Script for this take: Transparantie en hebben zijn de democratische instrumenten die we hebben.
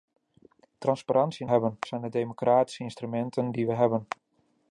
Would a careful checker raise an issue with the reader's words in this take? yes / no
no